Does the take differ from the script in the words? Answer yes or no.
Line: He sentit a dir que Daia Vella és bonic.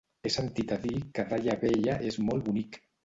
yes